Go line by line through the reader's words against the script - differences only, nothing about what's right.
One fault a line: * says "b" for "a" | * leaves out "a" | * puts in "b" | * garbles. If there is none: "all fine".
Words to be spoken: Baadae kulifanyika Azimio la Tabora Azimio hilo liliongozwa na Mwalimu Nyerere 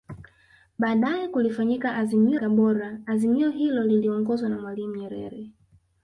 * leaves out "la"